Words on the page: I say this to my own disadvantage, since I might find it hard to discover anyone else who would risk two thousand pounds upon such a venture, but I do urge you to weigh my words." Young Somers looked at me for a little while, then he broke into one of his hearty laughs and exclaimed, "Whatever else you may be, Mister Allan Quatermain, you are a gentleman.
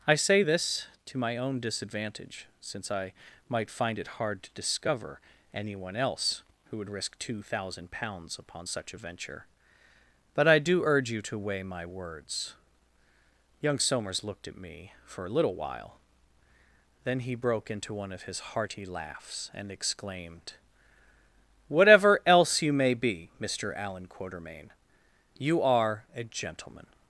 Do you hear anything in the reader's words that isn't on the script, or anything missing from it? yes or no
no